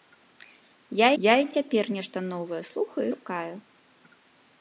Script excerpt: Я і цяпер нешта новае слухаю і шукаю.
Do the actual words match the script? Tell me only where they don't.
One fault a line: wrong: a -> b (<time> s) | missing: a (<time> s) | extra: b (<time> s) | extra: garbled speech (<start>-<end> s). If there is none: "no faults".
extra: я (1.2 s)
missing: і (3.1 s)